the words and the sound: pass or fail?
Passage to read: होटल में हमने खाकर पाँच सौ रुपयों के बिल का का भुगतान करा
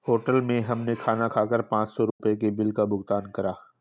fail